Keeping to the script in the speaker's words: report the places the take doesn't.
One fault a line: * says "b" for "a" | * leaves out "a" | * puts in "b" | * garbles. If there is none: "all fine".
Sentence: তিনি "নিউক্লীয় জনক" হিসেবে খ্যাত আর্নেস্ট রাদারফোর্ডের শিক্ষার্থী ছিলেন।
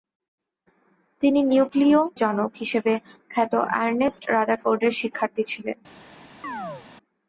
all fine